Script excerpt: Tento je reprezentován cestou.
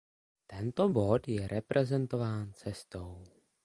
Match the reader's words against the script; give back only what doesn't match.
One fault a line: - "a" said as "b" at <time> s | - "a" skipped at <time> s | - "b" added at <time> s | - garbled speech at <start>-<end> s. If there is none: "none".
- "bod" added at 0.9 s